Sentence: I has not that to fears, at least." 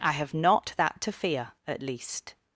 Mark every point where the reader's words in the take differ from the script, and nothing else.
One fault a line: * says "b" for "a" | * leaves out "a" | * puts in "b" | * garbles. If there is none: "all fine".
* says "have" for "has"
* says "fear" for "fears"